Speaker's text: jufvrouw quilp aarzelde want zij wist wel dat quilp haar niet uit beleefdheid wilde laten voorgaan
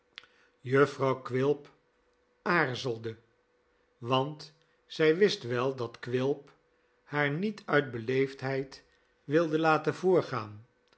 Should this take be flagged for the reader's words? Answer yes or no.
no